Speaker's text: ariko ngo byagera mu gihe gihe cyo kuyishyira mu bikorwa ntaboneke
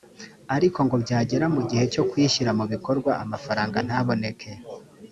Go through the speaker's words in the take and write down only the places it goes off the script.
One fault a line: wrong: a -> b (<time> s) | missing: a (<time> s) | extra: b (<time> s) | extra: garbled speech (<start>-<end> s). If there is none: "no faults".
missing: gihe (1.8 s)
extra: amafaranga (3.2 s)